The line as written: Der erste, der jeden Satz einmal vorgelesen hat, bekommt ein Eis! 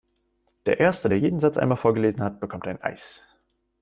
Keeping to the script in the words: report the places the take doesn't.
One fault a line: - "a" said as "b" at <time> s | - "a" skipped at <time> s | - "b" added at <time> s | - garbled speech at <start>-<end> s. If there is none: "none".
none